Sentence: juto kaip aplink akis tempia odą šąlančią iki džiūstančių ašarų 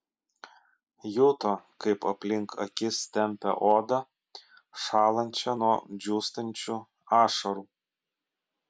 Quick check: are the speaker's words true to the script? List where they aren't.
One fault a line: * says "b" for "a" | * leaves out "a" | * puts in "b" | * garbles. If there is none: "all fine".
* says "nuo" for "iki"